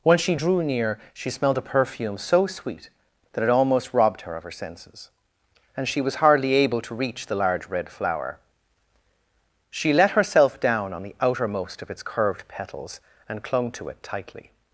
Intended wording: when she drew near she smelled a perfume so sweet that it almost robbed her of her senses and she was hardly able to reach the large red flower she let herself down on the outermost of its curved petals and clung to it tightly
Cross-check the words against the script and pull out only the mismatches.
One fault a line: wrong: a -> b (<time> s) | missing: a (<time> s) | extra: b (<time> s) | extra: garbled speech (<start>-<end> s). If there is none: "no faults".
no faults